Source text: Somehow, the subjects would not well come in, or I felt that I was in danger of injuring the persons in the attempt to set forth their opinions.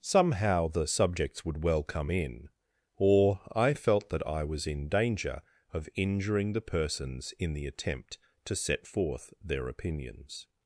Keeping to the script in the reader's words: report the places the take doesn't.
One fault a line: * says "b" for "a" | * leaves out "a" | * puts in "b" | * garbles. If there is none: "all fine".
* leaves out "not"